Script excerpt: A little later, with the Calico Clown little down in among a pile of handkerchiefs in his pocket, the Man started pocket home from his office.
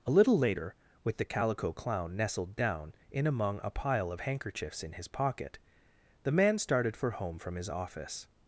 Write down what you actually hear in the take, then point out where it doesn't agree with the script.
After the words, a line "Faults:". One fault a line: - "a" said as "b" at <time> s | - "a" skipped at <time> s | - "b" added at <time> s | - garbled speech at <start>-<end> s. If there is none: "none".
A little later, with the Calico Clown nestled down in among a pile of handkerchiefs in his pocket, the Man started for home from his office.
Faults:
- "little" said as "nestled" at 2.1 s
- "pocket" said as "for" at 6.9 s